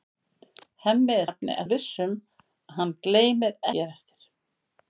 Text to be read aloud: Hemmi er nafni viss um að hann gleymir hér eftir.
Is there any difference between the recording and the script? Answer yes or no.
no